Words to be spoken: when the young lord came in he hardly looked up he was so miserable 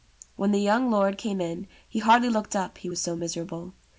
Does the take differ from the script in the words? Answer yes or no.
no